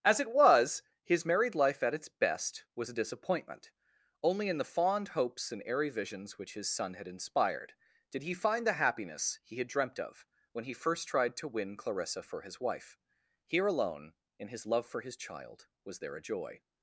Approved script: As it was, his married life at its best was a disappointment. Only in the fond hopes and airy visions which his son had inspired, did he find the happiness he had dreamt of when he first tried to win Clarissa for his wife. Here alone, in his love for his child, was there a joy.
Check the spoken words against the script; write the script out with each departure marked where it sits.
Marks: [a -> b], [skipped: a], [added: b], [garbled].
As it was, his married life at its best was a disappointment. Only in the fond hopes and airy visions which his son had inspired, did he find the happiness he had dreamt of when he first tried to win Clarissa for his wife. Here alone, in his love for his child, was there a joy.